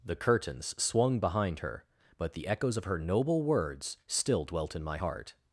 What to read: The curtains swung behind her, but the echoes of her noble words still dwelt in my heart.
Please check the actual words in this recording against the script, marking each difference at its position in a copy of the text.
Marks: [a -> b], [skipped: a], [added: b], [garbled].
The curtains swung behind her, but the echoes of her noble words still dwelt in my heart.